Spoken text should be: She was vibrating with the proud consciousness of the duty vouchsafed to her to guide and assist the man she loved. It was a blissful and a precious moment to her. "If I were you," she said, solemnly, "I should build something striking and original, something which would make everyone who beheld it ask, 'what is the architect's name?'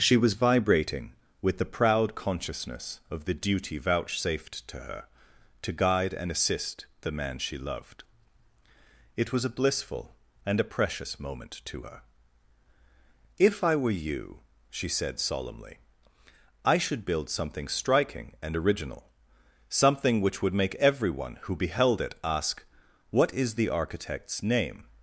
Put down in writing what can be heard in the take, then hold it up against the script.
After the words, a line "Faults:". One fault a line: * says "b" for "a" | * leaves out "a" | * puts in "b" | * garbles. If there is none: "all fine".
She was vibrating with the proud consciousness of the duty vouchsafed to her to guide and assist the man she loved. It was a blissful and a precious moment to her. "If I were you," she said, solemnly, "I should build something striking and original, something which would make everyone who beheld it ask, 'what is the architect's name?'
Faults:
all fine